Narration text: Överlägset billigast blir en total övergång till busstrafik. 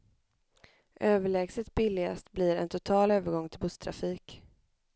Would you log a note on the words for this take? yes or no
no